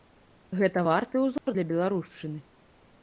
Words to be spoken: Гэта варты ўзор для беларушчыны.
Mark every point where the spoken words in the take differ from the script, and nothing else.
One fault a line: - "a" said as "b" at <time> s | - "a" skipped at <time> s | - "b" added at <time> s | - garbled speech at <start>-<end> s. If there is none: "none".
none